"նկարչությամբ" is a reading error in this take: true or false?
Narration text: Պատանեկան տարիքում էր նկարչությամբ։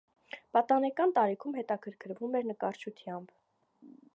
false